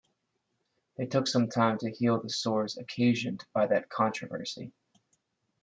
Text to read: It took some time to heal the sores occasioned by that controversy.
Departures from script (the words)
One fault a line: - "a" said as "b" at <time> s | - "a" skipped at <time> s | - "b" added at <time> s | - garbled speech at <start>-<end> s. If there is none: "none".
none